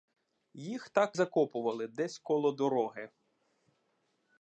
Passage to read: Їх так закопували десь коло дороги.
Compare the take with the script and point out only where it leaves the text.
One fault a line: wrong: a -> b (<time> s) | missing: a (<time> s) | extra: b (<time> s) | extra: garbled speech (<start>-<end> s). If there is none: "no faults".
no faults